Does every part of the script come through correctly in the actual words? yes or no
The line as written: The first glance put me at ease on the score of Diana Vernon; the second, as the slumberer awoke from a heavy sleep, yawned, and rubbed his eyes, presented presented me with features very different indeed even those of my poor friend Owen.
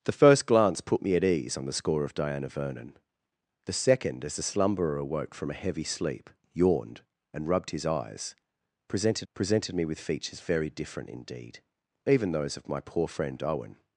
yes